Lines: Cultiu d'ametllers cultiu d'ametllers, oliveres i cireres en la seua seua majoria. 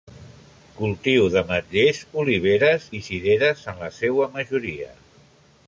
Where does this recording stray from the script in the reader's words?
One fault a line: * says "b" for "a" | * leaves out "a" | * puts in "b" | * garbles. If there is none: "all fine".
* leaves out "cultiu d'ametllers"
* leaves out "seua"